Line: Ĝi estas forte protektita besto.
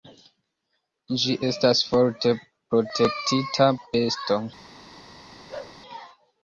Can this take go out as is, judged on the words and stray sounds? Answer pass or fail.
fail